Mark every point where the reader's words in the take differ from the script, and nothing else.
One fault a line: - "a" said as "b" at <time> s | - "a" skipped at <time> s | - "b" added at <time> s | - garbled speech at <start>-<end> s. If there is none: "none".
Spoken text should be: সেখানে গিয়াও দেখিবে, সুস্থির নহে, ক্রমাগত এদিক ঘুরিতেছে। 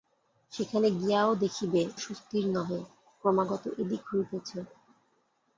none